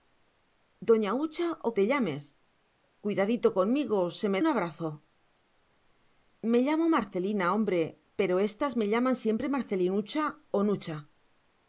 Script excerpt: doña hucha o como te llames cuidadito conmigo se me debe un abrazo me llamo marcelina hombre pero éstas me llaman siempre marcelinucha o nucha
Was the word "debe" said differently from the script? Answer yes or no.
yes